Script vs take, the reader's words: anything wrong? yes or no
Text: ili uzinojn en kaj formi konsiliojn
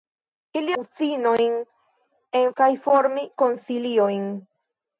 no